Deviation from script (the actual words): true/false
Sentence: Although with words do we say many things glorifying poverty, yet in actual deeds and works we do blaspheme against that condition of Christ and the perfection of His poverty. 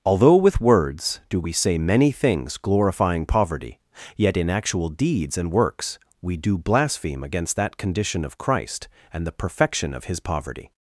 false